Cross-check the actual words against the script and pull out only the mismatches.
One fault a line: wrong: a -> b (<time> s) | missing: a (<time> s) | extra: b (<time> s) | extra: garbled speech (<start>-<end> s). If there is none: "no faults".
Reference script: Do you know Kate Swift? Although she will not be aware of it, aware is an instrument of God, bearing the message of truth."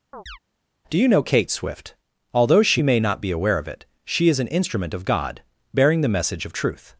wrong: will -> may (2.8 s)
wrong: aware -> she (4.0 s)